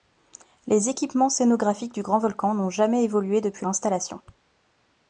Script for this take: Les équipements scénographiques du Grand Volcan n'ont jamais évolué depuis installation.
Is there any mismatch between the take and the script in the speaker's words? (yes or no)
no